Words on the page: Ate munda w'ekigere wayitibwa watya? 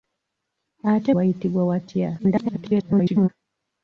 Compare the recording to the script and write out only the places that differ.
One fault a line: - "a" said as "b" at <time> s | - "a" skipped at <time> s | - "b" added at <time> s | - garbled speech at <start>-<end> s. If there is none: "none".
- "munda w'ekigere" skipped at 1.1 s
- garbled speech at 2.2-3.3 s